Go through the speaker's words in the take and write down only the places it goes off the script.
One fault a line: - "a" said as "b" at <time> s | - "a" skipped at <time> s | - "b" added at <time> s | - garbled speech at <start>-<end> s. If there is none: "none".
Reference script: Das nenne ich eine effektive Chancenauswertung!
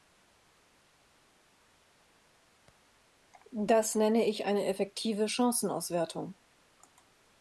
none